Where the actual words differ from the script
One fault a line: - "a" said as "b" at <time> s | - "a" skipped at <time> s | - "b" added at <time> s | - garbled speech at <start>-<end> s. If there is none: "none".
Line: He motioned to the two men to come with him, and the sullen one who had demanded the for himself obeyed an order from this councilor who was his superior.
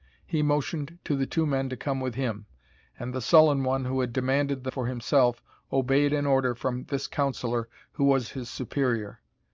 none